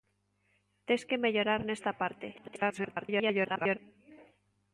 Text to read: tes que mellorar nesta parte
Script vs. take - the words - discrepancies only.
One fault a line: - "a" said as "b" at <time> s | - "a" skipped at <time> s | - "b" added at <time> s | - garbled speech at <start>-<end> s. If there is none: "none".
- garbled speech at 2.3-3.8 s